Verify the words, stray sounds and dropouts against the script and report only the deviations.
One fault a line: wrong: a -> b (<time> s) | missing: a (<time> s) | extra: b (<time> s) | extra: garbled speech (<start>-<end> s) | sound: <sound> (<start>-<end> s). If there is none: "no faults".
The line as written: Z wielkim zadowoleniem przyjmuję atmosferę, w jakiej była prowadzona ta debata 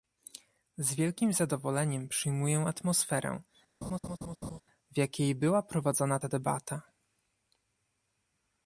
sound: laugh (3.8-4.6 s)